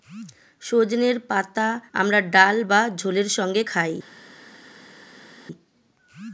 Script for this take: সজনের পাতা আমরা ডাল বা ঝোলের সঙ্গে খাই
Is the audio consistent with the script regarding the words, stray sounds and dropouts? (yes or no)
yes